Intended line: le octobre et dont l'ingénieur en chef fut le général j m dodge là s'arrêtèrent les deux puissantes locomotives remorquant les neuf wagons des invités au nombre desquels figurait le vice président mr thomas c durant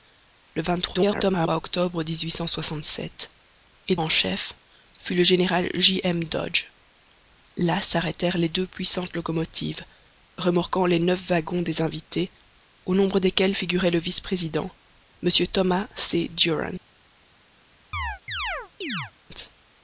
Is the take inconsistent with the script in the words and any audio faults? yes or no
yes